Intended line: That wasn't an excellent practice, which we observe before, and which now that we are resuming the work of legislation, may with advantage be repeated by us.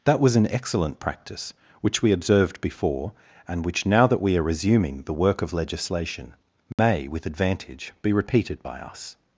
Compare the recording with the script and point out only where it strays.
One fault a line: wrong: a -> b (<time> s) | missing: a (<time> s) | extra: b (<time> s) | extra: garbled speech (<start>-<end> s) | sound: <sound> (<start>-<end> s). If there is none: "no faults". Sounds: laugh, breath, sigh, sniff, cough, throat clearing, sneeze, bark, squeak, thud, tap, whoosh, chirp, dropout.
wrong: wasn't -> was (0.2 s)
wrong: observe -> observed (2.1 s)
sound: dropout (6.7-6.8 s)